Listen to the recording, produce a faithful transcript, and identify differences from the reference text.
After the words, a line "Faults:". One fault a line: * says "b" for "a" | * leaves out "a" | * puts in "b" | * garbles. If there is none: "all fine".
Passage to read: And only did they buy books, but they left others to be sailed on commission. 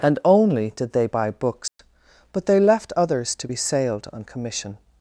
And only did they buy books, but they left others to be sailed on commission.
Faults:
all fine